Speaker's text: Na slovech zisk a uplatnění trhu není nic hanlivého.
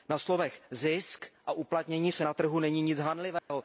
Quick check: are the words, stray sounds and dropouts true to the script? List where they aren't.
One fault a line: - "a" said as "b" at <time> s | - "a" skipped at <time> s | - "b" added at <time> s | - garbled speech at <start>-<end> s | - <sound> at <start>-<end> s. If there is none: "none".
- "se na" added at 2.1 s
- dropout at 3.4-3.5 s